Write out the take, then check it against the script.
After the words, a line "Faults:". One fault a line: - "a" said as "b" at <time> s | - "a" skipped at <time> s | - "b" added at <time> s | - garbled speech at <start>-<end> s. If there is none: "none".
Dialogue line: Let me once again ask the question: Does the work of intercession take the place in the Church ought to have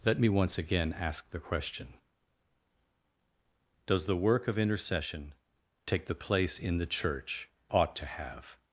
Let me once again ask the question: Does the work of intercession take the place in the Church ought to have
Faults:
none